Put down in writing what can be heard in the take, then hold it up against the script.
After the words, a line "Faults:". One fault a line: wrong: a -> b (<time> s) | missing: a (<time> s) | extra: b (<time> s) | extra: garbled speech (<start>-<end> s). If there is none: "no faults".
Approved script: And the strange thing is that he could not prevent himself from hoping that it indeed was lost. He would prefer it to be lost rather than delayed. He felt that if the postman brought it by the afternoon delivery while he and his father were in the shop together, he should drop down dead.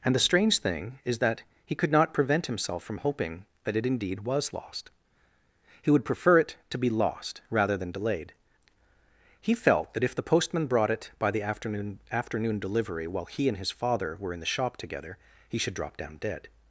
And the strange thing is that he could not prevent himself from hoping that it indeed was lost. He would prefer it to be lost rather than delayed. He felt that if the postman brought it by the afternoon afternoon delivery while he and his father were in the shop together, he should drop down dead.
Faults:
extra: afternoon (12.1 s)